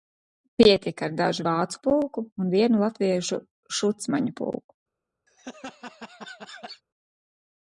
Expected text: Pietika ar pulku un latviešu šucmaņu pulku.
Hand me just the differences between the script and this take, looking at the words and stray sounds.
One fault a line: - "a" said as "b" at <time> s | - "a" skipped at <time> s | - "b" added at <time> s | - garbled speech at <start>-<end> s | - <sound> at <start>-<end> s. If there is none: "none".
- "dažu vācu" added at 1.2 s
- "vienu" added at 2.5 s
- laugh at 5.3-6.8 s